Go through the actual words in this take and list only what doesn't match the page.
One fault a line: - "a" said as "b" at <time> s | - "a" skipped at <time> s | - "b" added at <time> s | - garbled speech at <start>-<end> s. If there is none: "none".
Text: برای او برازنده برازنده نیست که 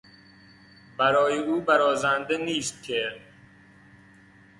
- "برازنده" skipped at 2.4 s